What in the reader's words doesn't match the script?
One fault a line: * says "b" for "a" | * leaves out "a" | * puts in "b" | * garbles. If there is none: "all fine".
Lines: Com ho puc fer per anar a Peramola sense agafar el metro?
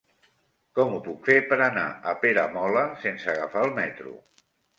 all fine